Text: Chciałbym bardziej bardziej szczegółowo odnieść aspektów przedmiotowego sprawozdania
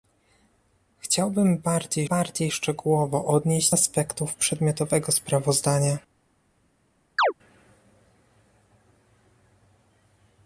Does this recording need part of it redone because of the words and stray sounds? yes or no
yes